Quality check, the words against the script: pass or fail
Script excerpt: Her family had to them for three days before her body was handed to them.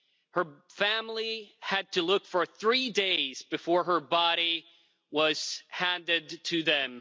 fail